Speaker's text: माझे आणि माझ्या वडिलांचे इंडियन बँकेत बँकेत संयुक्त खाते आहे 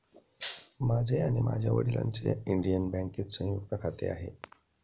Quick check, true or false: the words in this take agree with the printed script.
false